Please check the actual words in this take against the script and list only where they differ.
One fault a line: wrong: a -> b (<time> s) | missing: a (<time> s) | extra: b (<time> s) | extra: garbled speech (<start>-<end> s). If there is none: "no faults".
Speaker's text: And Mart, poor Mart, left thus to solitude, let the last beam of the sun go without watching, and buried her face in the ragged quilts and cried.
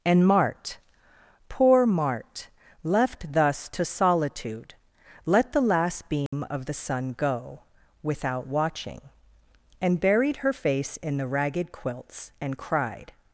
no faults